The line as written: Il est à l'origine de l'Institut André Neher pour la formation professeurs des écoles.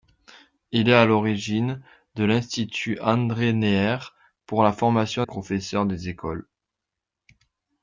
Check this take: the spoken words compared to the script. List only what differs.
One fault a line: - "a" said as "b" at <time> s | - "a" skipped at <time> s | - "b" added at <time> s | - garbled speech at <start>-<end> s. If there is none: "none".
none